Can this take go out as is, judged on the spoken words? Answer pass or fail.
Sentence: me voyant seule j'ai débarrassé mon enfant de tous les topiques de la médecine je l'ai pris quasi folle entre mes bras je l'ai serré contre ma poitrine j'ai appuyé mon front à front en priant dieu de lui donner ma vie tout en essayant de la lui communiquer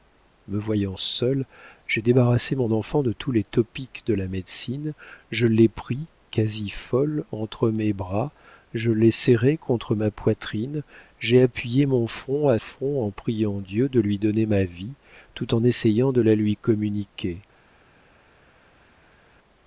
pass